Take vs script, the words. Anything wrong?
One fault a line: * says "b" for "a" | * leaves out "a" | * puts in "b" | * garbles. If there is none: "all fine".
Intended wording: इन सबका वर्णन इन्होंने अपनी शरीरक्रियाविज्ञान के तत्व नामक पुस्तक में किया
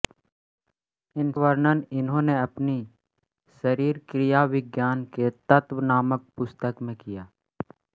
* leaves out "सबका"